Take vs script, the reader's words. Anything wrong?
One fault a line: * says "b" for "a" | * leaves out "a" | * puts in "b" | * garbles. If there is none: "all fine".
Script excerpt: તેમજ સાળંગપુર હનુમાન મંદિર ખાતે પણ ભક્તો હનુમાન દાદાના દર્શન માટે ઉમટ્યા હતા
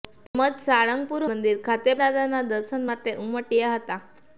* leaves out "હનુમાન"
* leaves out "પણ ભક્તો હનુમાન"